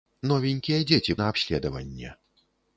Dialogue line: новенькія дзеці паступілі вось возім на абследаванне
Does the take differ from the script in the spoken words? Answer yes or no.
yes